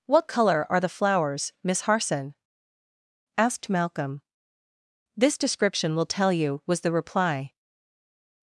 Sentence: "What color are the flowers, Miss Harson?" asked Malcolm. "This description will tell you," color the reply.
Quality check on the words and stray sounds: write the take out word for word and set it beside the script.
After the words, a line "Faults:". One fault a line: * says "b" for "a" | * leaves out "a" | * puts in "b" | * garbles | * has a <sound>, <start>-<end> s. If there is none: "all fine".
"What color are the flowers, Miss Harson?" asked Malcolm. "This description will tell you," was the reply.
Faults:
* says "was" for "color"